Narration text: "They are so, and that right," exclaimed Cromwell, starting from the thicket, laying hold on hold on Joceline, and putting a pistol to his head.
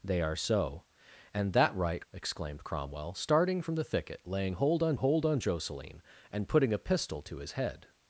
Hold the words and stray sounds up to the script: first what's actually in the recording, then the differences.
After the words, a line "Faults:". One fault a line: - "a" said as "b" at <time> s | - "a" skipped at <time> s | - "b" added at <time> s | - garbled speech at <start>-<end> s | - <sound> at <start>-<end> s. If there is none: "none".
"They are so, and that right," exclaimed Cromwell, starting from the thicket, laying hold on hold on Joceline, and putting a pistol to his head.
Faults:
none